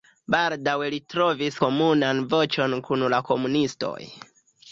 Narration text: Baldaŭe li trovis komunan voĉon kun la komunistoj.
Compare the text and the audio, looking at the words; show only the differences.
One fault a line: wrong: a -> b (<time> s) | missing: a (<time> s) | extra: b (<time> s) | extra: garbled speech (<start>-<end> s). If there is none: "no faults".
no faults